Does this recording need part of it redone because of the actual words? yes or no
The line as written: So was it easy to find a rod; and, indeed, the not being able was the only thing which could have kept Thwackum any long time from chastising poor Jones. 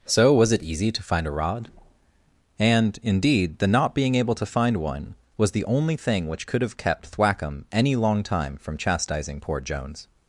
yes